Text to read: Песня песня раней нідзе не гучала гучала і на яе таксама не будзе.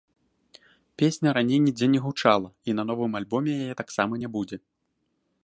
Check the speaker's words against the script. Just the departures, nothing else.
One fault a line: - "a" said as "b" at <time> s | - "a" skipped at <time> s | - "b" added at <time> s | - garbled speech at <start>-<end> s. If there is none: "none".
- "песня" skipped at 1.3 s
- "гучала" skipped at 2.5 s
- "новым альбоме" added at 2.9 s